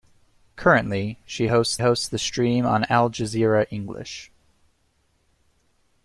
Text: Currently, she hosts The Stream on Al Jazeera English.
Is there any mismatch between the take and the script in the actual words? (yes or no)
yes